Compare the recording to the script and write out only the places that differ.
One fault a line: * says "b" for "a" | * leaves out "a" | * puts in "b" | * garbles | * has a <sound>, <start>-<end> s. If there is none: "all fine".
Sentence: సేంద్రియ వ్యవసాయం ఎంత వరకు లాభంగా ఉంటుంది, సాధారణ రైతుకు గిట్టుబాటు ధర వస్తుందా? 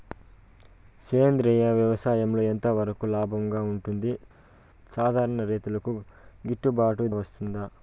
* leaves out "ధర"